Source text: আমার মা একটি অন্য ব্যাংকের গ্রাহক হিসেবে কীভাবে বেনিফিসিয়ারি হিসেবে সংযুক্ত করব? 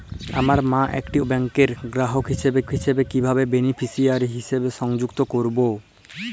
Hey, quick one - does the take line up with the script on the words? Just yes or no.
no